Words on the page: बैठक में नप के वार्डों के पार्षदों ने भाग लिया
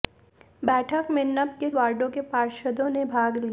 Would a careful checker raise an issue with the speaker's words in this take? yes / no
no